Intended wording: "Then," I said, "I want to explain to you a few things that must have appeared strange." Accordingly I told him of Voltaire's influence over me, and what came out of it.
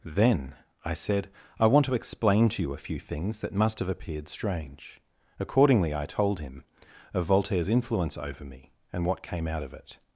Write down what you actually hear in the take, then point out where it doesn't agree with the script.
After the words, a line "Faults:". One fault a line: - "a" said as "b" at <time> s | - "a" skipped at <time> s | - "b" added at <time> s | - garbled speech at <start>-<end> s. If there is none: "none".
"Then," I said, "I want to explain to you a few things that must have appeared strange." Accordingly I told him of Voltaire's influence over me, and what came out of it.
Faults:
none